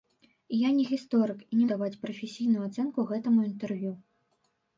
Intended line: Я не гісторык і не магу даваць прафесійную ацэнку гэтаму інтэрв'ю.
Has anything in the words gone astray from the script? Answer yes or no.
yes